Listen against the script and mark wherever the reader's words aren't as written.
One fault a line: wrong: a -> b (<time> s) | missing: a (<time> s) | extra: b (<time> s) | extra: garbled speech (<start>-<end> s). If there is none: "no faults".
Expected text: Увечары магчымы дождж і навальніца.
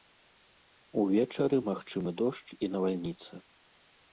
no faults